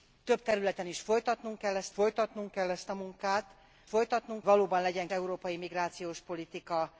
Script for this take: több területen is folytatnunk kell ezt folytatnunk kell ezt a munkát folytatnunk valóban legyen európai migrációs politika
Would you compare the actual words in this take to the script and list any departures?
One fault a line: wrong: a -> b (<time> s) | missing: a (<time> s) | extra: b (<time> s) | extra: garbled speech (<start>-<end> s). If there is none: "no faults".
no faults